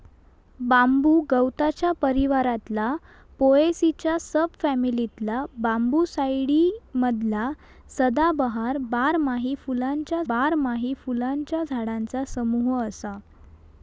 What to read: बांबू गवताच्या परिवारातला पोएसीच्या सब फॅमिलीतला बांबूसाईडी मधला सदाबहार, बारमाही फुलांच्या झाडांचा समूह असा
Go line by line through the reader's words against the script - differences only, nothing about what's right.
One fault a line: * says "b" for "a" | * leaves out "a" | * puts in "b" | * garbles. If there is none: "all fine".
* puts in "बारमाही फुलांच्या"